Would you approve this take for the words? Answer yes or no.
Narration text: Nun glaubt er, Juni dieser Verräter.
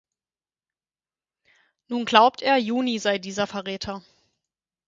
no